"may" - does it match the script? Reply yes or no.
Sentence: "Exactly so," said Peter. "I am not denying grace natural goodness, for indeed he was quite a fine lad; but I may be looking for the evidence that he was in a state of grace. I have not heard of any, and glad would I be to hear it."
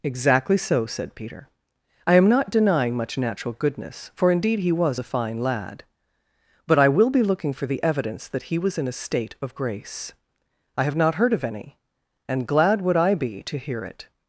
no